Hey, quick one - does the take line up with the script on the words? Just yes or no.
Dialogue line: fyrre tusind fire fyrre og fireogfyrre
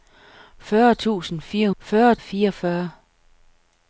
yes